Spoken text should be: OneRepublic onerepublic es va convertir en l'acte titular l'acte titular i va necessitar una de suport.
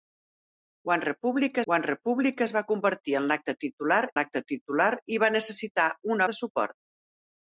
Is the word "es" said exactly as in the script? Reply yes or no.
yes